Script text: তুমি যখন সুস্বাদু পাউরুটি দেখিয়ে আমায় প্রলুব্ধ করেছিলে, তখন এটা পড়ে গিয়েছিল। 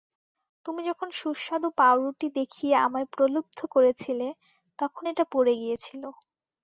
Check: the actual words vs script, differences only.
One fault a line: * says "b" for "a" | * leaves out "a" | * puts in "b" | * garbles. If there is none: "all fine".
all fine